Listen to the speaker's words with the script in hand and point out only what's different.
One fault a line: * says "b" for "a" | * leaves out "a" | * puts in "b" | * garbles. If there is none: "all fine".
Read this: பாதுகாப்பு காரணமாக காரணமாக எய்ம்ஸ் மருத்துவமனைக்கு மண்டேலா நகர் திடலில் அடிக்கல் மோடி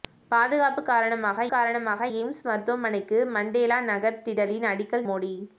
all fine